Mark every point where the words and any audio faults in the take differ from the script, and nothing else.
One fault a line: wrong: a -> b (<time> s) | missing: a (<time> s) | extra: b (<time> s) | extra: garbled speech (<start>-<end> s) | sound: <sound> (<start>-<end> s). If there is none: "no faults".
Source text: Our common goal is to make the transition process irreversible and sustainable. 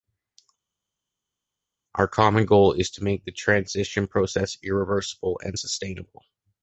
no faults